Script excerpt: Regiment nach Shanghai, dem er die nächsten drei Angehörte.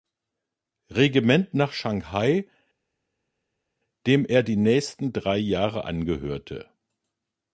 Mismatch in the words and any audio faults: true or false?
true